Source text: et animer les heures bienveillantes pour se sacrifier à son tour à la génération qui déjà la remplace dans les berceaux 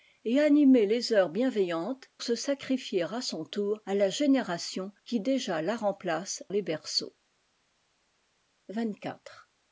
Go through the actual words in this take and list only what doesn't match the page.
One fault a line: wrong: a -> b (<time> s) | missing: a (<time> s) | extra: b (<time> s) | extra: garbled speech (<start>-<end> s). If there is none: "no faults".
missing: pour (2.1 s)
missing: dans (6.4 s)